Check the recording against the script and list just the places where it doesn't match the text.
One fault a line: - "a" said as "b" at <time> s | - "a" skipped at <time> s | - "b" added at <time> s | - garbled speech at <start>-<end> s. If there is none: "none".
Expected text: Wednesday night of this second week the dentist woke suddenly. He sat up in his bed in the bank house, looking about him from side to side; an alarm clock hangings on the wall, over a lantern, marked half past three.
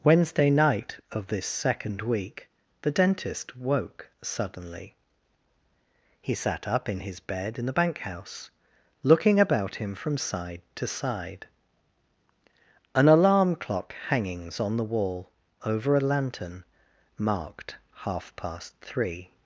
none